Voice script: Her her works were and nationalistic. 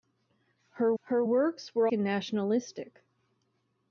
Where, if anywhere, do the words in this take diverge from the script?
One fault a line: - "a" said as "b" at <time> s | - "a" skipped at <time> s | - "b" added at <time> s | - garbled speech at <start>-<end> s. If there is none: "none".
none